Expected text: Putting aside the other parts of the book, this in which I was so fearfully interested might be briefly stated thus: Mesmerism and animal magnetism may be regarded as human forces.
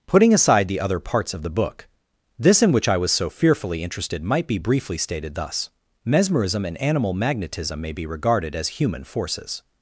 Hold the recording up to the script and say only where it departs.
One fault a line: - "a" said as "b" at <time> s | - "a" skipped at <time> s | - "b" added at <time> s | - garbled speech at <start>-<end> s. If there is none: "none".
none